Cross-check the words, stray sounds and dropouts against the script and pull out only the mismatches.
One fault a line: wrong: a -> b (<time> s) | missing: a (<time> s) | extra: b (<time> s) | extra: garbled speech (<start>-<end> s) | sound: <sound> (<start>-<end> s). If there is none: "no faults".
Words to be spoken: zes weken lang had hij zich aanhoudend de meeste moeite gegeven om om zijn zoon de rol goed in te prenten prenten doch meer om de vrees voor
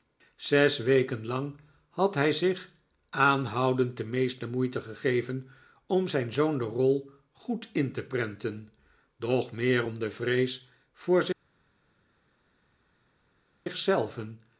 missing: om (6.1 s)
missing: prenten (8.7 s)